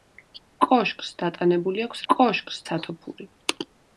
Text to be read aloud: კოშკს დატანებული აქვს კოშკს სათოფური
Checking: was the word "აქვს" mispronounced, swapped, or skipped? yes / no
no